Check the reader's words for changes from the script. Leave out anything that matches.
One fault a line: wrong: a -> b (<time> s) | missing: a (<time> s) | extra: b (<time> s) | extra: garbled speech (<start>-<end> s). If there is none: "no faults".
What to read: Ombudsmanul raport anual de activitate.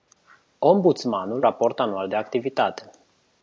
no faults